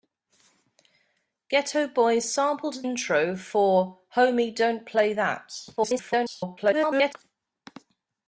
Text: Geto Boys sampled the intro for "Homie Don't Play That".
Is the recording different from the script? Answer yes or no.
yes